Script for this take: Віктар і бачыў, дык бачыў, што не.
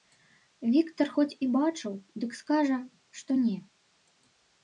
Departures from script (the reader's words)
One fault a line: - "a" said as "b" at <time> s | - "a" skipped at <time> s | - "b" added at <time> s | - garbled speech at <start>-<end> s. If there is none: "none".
- "хоць" added at 1.2 s
- "бачыў" said as "скажа" at 2.4 s